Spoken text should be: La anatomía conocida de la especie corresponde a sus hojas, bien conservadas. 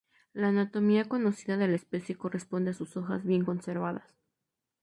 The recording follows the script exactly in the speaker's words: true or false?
true